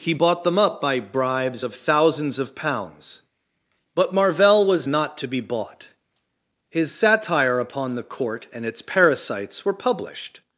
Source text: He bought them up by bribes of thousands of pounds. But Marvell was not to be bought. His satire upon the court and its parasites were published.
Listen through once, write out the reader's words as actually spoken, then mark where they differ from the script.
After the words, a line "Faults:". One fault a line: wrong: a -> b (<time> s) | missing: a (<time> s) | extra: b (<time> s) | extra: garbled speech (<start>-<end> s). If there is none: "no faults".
He bought them up by bribes of thousands of pounds. But Marvell was not to be bought. His satire upon the court and its parasites were published.
Faults:
no faults